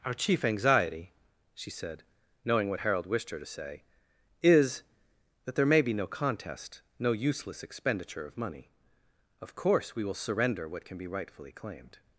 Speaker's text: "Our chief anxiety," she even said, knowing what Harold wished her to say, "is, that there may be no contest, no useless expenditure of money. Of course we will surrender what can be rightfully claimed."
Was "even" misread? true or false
true